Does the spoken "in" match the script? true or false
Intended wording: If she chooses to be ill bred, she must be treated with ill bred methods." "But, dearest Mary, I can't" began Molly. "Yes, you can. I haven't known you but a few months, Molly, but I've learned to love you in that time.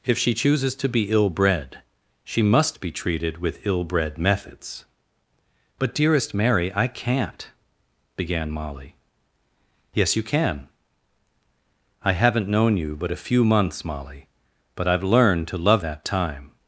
false